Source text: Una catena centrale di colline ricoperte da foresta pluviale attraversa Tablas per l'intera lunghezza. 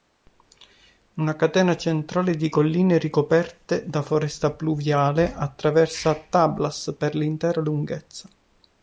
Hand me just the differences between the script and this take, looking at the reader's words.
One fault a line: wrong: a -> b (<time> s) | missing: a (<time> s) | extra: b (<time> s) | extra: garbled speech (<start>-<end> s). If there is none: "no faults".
no faults